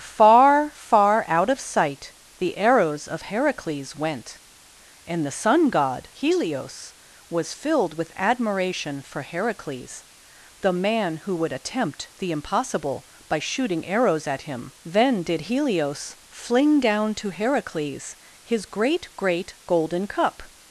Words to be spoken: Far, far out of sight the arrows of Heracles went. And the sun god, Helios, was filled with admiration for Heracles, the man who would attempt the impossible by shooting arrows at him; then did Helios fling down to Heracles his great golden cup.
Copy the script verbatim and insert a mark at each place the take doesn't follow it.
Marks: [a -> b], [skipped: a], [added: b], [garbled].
Far, far out of sight the arrows of Heracles went. And the sun god, Helios, was filled with admiration for Heracles, the man who would attempt the impossible by shooting arrows at him; then did Helios fling down to Heracles his great [added: great] golden cup.